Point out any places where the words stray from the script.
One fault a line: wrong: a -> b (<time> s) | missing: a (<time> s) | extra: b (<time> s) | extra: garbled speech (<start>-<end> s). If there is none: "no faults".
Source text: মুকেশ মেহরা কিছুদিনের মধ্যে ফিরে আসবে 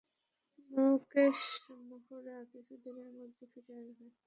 no faults